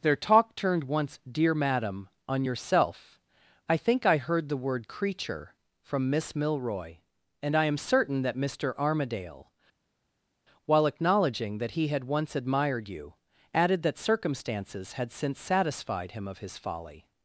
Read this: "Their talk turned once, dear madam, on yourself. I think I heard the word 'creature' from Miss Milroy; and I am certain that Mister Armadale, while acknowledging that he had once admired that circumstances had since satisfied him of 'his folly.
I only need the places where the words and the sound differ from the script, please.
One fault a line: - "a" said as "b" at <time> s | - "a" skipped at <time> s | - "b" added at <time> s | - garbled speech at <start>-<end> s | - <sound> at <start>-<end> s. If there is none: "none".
- "you added" added at 12.9 s